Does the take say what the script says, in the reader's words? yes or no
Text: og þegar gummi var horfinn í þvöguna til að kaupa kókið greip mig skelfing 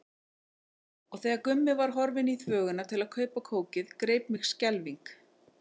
yes